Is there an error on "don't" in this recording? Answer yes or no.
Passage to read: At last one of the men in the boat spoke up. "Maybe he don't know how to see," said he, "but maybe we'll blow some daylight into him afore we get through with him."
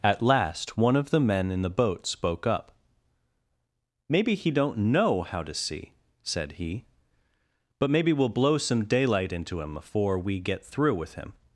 no